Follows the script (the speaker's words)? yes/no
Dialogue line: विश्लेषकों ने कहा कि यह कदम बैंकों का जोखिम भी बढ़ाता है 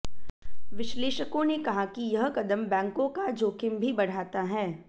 yes